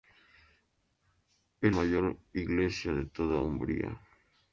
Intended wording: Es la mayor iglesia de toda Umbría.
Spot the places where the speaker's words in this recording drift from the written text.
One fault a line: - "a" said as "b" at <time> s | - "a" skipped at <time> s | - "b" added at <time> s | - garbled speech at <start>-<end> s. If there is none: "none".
- "la" skipped at 1.7 s